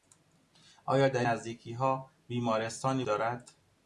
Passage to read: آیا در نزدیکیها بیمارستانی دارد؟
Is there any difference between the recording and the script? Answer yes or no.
no